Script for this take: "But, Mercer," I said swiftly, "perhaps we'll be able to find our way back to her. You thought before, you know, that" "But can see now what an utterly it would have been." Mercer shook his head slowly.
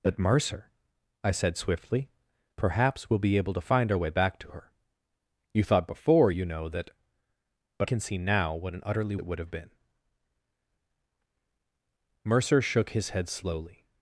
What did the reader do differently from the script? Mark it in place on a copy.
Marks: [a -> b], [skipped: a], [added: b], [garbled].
"But, Mercer," I said swiftly, "perhaps we'll be able to find our way back to her. You thought before, you know, that" "But can see now what an utterly it would have been." Mercer shook his head slowly.